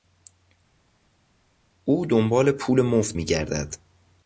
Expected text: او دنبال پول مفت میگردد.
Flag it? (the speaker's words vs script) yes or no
no